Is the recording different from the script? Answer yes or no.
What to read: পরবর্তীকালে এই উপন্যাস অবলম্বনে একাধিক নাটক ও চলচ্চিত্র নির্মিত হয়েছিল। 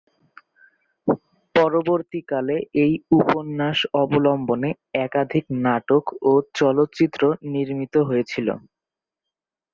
no